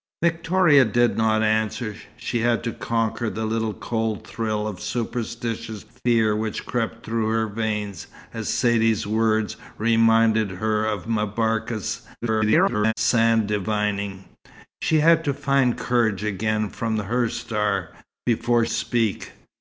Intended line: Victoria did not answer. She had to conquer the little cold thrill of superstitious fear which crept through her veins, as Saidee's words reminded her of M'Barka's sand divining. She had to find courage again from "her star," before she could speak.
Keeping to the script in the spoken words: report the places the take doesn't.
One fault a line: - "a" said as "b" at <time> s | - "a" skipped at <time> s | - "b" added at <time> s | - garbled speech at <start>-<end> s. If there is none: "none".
- garbled speech at 12.2-12.9 s
- "she could" skipped at 18.6 s